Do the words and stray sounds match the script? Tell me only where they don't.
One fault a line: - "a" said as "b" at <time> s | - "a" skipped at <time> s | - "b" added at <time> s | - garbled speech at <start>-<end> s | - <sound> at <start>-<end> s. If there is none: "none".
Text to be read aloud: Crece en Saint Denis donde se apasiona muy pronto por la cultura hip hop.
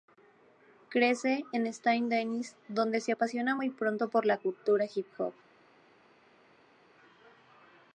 none